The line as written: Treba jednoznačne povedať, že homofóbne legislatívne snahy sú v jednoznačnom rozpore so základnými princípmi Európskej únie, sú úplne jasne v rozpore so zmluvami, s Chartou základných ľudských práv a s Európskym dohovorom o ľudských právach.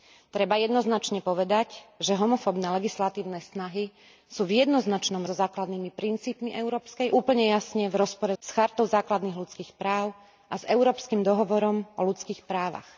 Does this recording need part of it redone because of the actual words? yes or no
yes